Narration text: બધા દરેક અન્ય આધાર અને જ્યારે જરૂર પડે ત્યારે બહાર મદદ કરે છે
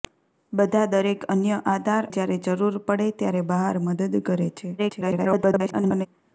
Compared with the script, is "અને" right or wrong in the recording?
wrong